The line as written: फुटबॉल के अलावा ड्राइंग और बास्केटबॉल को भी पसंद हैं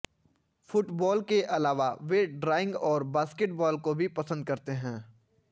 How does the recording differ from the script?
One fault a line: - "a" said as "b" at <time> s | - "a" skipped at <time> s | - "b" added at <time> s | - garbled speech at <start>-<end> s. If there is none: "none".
- "वे" added at 2.0 s
- "करते" added at 4.5 s